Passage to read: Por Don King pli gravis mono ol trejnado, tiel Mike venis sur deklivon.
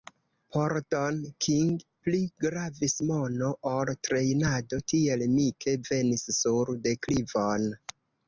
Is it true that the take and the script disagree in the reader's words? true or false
false